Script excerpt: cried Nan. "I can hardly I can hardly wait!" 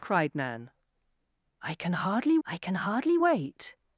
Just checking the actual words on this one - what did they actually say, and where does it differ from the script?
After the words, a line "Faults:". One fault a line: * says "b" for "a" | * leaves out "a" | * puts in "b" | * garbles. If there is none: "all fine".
cried Nan. "I can hardly I can hardly wait!"
Faults:
all fine